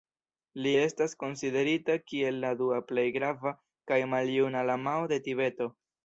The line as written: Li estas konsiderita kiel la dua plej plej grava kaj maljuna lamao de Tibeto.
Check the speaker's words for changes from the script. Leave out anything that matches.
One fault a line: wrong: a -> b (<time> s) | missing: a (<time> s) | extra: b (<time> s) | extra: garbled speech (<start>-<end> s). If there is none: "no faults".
missing: plej (3.1 s)